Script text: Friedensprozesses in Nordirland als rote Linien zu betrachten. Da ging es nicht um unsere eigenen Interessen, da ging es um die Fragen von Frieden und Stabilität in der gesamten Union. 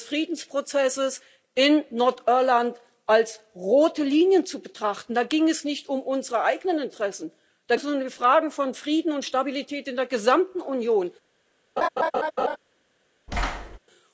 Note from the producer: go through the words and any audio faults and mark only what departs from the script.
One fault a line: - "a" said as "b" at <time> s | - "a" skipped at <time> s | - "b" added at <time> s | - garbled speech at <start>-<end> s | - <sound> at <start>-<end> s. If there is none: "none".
- "ging" skipped at 7.8 s
- laugh at 11.8-12.6 s
- thud at 13.3-13.8 s